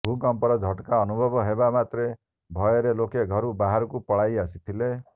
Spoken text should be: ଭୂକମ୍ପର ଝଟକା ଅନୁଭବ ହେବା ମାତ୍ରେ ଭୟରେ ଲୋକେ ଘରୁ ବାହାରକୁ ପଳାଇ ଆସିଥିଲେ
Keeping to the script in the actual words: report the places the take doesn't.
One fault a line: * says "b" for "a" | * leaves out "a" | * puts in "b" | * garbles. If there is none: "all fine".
all fine